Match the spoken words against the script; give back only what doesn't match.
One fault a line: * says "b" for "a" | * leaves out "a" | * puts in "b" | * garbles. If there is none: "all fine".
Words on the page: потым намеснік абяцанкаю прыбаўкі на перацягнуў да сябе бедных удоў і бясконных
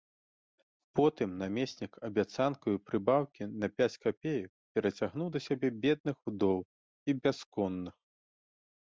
* puts in "пяць капеек"